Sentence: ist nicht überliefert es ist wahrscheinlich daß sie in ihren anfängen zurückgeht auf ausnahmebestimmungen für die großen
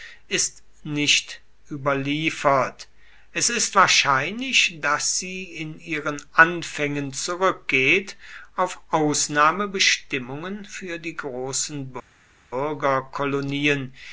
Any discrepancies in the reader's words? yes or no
no